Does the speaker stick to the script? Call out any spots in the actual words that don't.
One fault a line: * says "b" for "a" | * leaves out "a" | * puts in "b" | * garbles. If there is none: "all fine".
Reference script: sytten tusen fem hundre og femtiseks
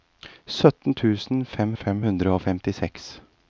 * puts in "fem"